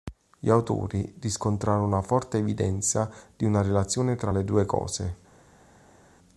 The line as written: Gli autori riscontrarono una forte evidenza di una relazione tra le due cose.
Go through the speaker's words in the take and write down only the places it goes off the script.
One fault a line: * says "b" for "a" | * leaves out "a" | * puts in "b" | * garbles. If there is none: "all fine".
all fine